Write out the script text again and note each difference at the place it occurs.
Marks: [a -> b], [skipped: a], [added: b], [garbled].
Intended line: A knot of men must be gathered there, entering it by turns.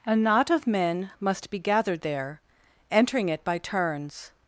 A knot of men must be gathered there, entering it by turns.